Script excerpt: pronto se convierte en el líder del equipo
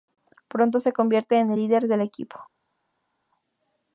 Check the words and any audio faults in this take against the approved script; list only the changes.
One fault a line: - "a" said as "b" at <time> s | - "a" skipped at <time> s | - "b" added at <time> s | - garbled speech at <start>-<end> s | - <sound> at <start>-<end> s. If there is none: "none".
none